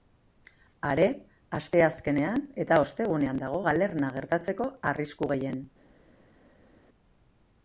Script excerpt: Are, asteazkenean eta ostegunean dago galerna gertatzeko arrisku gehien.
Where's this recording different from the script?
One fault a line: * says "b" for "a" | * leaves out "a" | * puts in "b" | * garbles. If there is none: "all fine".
all fine